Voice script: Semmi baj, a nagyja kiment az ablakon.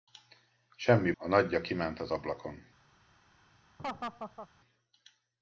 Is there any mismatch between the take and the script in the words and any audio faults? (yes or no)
yes